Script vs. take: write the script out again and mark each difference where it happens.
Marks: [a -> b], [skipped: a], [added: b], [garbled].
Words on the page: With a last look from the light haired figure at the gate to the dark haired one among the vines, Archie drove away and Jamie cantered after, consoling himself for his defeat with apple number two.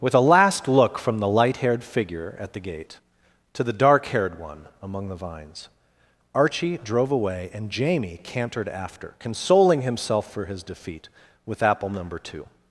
With a last look from the light haired figure at the gate to the dark haired one among the vines, Archie drove away and Jamie cantered after, consoling himself for his defeat with apple number two.